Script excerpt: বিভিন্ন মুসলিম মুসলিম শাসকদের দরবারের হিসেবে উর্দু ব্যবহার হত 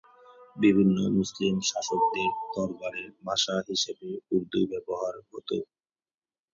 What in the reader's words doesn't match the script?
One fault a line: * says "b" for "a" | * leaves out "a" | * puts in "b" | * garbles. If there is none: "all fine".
* leaves out "মুসলিম"
* puts in "ভাষা"